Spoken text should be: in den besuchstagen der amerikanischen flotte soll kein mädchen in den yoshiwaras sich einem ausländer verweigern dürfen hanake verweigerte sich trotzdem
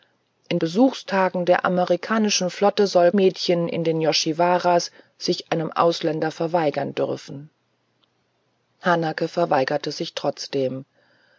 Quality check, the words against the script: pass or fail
fail